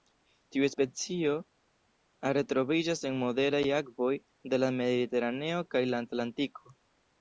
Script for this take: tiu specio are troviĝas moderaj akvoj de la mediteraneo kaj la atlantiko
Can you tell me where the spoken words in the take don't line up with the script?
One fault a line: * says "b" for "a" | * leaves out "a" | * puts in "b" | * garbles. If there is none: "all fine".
* puts in "en"